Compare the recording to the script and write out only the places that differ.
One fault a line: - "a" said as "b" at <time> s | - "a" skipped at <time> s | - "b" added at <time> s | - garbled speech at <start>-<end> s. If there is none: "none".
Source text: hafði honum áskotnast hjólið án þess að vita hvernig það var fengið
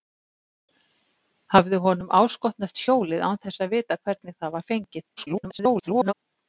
- garbled speech at 5.2-6.1 s